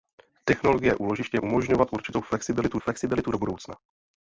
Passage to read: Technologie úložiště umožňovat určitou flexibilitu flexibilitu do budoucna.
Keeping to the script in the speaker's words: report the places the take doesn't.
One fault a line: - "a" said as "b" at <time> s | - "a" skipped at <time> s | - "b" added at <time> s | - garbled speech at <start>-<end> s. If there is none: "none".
none